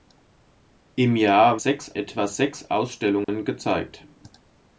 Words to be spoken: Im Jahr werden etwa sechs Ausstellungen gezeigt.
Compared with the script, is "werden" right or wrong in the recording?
wrong